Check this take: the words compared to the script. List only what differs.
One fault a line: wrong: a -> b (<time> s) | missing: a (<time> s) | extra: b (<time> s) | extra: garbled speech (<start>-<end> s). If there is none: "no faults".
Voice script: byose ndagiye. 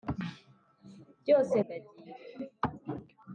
no faults